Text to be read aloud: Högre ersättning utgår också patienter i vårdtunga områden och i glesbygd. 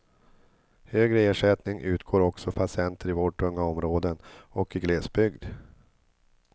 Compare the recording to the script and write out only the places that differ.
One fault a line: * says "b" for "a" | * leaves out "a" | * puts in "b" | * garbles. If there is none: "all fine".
all fine